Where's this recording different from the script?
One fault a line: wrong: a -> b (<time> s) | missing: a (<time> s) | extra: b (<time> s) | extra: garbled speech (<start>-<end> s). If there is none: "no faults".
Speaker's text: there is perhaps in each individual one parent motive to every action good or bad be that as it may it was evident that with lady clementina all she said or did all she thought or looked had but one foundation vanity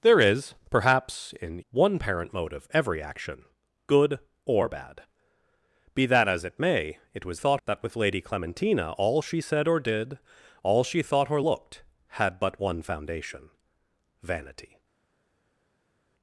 missing: each individual (1.6 s)
missing: to (2.7 s)
wrong: evident -> thought (7.4 s)